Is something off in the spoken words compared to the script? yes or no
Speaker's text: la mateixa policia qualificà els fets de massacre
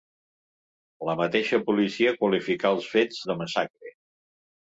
no